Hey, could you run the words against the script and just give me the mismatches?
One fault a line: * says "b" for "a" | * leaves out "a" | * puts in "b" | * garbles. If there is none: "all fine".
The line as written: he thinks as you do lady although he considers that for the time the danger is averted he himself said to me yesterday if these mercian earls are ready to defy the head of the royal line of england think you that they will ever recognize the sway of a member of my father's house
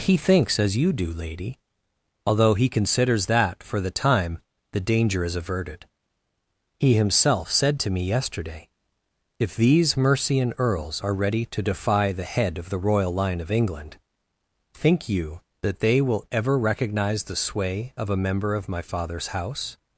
all fine